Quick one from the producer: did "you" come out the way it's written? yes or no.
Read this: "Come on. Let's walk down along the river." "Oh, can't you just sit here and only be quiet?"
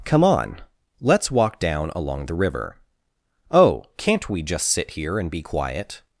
no